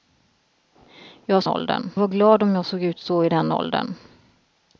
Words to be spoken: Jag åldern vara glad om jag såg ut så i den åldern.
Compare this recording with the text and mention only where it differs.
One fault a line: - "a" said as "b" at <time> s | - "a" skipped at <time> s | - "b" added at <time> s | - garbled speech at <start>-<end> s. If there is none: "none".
none